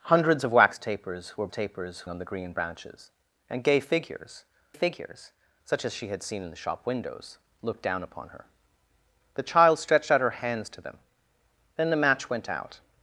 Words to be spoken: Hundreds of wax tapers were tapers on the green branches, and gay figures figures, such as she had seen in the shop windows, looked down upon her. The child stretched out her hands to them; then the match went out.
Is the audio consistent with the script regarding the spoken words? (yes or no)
yes